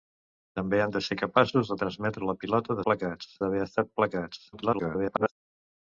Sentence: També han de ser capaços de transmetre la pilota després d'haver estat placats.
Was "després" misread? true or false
true